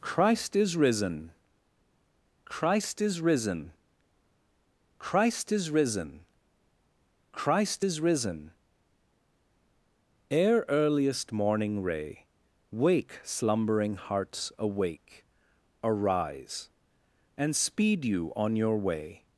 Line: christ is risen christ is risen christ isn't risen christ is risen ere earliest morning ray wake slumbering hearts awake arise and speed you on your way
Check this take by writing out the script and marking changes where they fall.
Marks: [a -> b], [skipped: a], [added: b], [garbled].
christ is risen christ is risen christ [isn't -> is] risen christ is risen ere earliest morning ray wake slumbering hearts awake arise and speed you on your way